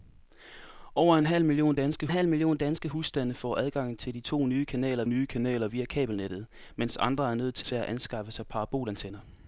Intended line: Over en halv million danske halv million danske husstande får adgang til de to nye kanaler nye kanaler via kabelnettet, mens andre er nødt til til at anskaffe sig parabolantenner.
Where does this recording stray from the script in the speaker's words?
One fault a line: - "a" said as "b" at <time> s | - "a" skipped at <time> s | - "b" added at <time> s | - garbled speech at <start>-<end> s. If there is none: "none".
none